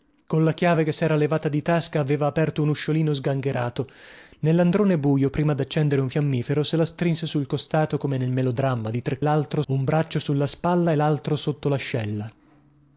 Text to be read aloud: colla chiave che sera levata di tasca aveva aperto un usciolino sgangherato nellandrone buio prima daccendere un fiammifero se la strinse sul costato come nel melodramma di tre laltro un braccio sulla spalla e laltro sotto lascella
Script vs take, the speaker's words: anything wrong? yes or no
no